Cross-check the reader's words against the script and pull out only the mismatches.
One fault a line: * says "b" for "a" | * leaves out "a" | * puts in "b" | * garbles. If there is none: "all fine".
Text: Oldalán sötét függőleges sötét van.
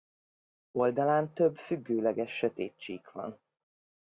* says "több" for "sötét"
* puts in "csík"